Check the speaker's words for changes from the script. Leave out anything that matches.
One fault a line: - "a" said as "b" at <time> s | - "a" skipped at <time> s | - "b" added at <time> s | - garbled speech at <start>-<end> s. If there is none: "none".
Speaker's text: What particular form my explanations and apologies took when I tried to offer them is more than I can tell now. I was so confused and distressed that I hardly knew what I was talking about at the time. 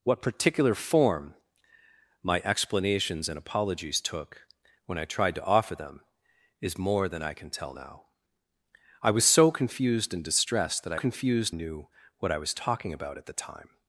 - "hardly" said as "confused" at 10.9 s